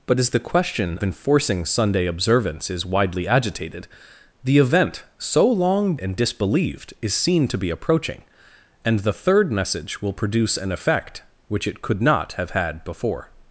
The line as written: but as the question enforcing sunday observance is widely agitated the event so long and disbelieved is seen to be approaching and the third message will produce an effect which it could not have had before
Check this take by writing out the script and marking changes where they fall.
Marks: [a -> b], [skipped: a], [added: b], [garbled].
but as the question enforcing sunday observance is widely agitated the event so long and disbelieved is seen to be approaching and the third message will produce an effect which it could not have had before